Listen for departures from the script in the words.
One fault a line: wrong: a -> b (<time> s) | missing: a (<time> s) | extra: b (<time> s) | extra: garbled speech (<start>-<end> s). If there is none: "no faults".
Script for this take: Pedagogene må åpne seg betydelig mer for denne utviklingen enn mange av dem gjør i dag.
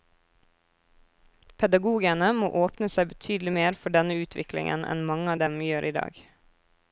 no faults